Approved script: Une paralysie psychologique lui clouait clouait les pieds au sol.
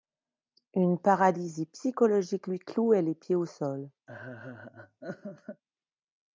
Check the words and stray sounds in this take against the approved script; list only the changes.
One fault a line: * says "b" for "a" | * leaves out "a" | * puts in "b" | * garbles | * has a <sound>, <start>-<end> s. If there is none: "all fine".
* leaves out "clouait"
* has a laugh, 4.1-5.6 s